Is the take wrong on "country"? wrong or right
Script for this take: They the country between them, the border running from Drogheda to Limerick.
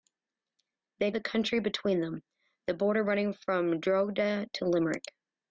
right